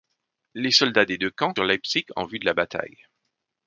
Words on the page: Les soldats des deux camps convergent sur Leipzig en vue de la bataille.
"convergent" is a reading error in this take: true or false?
true